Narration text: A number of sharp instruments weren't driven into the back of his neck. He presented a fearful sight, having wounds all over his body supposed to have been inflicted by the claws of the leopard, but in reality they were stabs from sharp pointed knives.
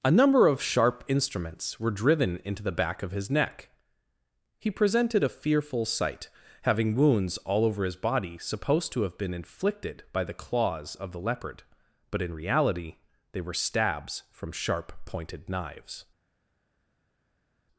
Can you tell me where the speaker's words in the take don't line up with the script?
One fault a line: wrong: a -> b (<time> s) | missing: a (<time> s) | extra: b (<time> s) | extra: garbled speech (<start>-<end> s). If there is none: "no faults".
wrong: weren't -> were (1.8 s)